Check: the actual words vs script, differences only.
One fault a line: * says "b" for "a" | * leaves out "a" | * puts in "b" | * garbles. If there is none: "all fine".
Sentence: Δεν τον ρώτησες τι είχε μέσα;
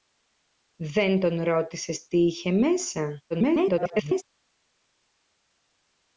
* garbles